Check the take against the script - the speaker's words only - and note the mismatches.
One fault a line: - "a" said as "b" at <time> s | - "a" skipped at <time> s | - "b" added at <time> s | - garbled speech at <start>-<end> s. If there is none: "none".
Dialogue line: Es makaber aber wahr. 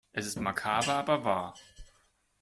- "ist" added at 0.2 s